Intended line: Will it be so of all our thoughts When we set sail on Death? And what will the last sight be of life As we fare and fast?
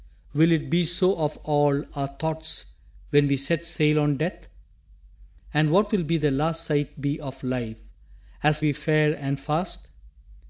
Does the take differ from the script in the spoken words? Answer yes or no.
no